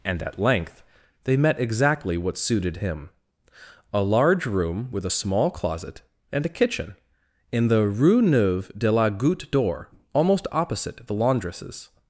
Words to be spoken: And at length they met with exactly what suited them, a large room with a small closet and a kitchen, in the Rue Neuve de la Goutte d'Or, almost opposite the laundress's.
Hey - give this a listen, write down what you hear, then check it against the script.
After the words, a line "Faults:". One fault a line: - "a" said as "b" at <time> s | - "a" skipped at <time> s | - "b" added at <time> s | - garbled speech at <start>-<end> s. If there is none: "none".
And at length they met exactly what suited him, a large room with a small closet and a kitchen, in the Rue Neuve de la Goutte d'Or, almost opposite the laundress's.
Faults:
- "with" skipped at 1.6 s
- "them" said as "him" at 2.7 s